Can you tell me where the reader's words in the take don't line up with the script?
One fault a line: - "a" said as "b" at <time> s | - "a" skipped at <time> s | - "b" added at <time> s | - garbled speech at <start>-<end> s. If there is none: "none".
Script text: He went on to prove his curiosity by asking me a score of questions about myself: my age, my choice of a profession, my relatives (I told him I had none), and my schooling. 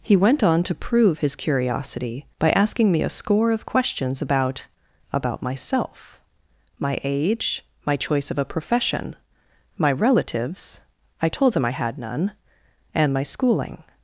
- "about" added at 5.1 s